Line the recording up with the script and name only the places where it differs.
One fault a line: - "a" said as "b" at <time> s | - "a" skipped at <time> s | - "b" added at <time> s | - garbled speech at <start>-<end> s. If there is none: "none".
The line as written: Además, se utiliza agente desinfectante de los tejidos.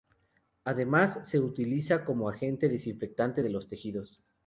- "como" added at 2.0 s